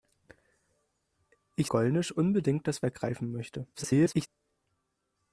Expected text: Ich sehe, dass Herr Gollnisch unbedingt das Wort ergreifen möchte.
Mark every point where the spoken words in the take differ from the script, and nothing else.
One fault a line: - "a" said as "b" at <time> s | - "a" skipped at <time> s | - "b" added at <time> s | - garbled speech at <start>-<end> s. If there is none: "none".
- "sehe dass Herr" skipped at 1.7 s
- "Wort" skipped at 2.8 s
- garbled speech at 3.7-4.3 s